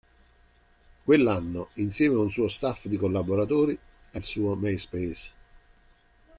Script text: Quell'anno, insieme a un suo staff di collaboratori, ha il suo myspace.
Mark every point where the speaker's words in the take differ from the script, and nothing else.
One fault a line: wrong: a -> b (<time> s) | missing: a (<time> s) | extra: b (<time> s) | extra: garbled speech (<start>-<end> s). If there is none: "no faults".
no faults